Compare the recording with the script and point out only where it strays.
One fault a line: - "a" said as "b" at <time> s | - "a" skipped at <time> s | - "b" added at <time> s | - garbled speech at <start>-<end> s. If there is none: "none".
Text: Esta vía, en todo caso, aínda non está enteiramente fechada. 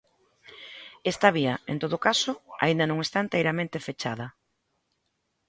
none